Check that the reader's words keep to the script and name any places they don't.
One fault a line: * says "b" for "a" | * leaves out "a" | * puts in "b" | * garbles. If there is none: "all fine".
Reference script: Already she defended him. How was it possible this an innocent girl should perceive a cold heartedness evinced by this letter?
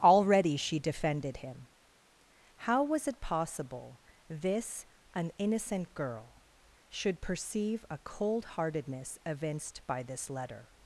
all fine